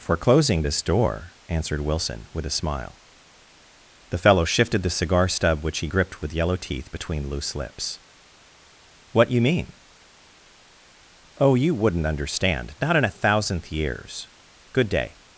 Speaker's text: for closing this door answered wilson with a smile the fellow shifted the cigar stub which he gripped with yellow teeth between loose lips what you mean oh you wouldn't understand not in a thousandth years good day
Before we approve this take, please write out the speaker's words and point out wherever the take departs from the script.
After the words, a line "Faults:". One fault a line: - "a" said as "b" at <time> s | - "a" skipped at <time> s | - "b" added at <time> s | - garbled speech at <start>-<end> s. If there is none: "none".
for closing this door answered wilson with a smile the fellow shifted the cigar stub which he gripped with yellow teeth between loose lips what you mean oh you wouldn't understand not in a thousandth years good day
Faults:
none